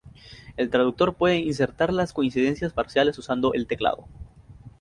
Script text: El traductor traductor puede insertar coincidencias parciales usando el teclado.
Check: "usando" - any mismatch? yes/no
no